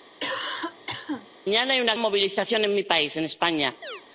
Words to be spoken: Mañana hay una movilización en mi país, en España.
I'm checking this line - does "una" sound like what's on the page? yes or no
yes